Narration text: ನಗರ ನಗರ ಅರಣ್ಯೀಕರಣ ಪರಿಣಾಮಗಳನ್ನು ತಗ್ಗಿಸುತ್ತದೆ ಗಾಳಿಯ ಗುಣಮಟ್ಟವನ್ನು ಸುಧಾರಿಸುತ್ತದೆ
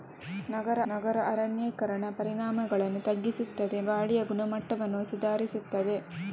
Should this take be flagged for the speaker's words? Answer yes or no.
no